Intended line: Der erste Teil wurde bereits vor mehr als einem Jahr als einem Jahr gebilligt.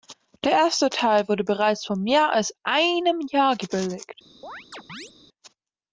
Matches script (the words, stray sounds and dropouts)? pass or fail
fail